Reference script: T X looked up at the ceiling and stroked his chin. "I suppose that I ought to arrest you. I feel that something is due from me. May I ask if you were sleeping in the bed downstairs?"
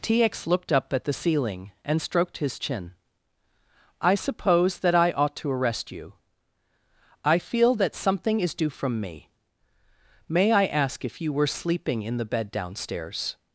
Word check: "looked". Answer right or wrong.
right